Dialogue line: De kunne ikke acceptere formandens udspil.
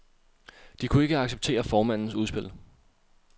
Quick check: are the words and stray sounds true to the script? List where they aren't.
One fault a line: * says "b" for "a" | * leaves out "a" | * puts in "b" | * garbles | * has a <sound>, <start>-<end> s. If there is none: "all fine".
all fine